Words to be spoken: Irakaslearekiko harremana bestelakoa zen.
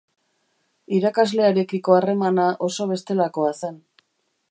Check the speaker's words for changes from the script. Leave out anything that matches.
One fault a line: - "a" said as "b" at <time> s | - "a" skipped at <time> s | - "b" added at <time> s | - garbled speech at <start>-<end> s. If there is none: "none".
- "oso" added at 2.7 s